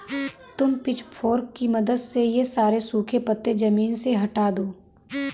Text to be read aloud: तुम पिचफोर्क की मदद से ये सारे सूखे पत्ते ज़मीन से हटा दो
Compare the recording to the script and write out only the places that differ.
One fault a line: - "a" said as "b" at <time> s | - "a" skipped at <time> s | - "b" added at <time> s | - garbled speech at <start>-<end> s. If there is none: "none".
none